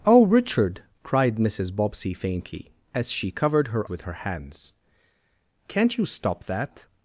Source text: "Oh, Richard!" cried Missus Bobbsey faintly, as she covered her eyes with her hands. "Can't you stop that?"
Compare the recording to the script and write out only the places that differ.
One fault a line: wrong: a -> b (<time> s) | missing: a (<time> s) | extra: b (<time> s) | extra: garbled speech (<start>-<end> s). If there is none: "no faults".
missing: eyes (3.9 s)